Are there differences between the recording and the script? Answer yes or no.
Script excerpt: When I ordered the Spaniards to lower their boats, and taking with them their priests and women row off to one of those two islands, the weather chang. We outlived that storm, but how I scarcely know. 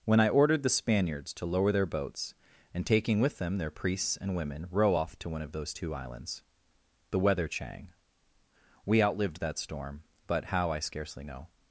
no